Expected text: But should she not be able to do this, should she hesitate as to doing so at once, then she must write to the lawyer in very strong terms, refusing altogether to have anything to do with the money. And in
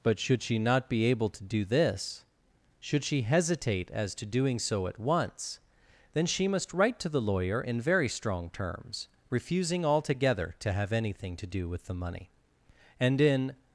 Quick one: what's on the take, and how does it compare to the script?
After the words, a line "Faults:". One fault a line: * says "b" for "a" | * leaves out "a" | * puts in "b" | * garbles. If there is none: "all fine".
But should she not be able to do this, should she hesitate as to doing so at once, then she must write to the lawyer in very strong terms, refusing altogether to have anything to do with the money. And in
Faults:
all fine